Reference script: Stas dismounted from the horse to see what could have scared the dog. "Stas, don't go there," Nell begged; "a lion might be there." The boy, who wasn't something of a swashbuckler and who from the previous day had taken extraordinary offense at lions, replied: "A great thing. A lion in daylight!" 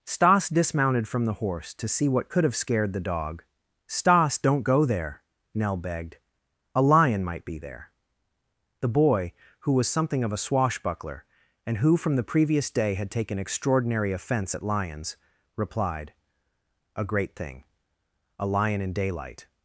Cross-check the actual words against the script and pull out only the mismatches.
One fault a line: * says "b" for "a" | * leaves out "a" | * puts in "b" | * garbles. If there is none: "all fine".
* says "was" for "wasn't"